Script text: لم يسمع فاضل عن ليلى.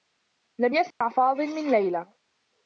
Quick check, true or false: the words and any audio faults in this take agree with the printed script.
false